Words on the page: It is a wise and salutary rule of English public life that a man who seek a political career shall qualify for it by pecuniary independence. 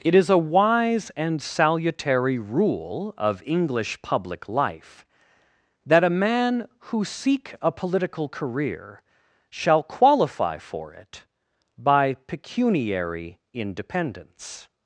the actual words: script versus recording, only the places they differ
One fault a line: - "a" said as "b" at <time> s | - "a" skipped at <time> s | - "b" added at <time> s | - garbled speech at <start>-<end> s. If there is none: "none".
none